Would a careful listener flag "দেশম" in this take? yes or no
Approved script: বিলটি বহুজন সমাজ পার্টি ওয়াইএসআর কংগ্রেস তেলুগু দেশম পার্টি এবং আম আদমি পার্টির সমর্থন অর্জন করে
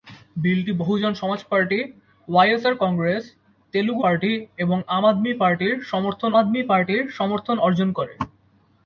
yes